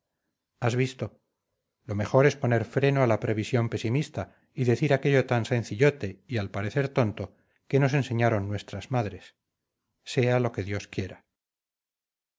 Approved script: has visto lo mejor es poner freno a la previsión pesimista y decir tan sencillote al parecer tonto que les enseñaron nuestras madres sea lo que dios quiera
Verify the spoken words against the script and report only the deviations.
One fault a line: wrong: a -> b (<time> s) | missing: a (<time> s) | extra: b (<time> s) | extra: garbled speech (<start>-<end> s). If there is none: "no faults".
extra: aquello (5.0 s)
extra: y (6.3 s)
wrong: les -> nos (7.8 s)